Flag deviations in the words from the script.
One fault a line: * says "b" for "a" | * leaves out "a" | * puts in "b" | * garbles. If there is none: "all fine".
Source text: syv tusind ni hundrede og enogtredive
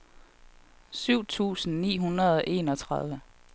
all fine